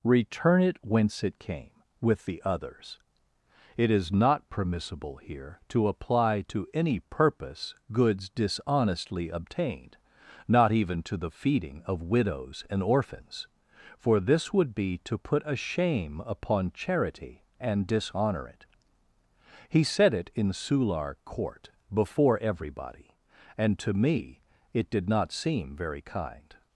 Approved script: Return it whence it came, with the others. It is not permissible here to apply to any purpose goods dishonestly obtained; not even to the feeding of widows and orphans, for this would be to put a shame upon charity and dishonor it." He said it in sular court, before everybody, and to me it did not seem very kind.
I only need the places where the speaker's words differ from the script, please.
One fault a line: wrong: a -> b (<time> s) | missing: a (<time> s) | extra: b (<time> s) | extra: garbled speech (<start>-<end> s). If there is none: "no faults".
no faults